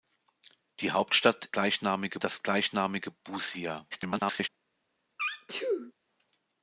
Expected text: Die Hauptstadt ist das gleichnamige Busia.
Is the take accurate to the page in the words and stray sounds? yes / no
no